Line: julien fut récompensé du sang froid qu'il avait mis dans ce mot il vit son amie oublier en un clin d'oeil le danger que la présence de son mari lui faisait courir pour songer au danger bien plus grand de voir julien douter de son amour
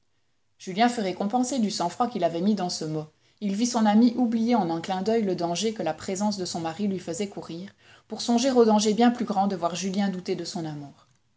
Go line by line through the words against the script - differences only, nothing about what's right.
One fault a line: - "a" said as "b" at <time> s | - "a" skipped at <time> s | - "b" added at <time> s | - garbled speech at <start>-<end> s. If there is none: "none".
none